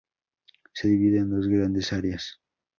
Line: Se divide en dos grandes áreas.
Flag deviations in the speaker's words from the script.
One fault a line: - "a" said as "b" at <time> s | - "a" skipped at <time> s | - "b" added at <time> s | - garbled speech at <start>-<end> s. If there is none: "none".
none